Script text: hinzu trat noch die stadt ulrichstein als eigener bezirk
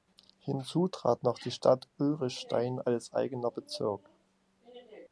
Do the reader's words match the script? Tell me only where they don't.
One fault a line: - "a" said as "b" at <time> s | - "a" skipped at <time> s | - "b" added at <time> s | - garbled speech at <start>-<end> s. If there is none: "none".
none